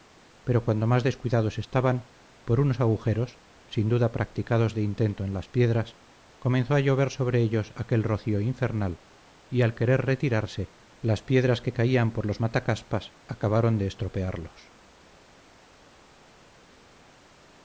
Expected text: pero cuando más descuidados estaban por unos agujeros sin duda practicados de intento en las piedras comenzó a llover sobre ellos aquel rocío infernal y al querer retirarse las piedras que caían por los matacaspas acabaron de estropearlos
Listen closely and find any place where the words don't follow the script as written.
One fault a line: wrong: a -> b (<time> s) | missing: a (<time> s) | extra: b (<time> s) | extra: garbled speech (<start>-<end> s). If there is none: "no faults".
no faults